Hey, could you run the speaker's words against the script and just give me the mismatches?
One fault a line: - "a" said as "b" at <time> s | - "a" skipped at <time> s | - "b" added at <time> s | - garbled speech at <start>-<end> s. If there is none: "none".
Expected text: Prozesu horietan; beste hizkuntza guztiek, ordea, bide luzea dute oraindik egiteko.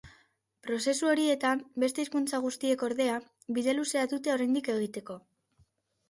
none